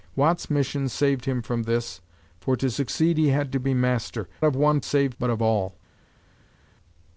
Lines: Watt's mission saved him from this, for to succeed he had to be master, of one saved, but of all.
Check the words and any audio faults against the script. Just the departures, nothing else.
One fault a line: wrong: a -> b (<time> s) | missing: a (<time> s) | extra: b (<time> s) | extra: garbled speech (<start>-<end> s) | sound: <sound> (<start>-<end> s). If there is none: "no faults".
no faults